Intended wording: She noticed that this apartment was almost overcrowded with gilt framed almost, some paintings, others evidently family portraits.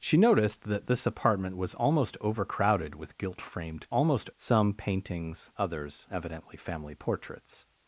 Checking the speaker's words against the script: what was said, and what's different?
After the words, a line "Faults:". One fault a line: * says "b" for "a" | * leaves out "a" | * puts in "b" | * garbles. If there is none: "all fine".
She noticed that this apartment was almost overcrowded with gilt framed almost, some paintings, others evidently family portraits.
Faults:
all fine